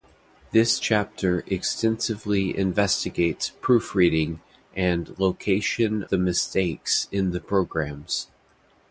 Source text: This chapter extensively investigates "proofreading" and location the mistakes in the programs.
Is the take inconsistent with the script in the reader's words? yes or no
no